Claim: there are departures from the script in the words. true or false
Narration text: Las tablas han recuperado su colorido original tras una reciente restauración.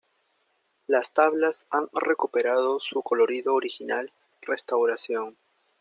true